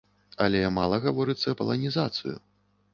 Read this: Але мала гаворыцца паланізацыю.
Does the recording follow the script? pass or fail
pass